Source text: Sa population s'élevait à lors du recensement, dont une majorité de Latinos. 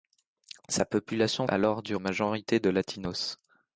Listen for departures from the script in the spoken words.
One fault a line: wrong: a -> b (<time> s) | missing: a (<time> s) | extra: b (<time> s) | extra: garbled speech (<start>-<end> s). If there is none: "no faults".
missing: s'élevait (1.4 s)
missing: recensement dont une (2.0 s)